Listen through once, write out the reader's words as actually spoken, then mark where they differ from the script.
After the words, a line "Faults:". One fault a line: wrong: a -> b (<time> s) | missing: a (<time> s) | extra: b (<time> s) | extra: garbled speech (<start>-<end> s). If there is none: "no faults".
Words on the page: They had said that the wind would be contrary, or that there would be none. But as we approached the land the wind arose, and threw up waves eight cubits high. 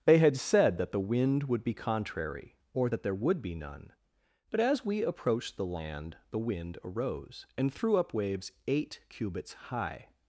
They had said that the wind would be contrary, or that there would be none. But as we approached the land the wind arose, and threw up waves eight cubits high.
Faults:
no faults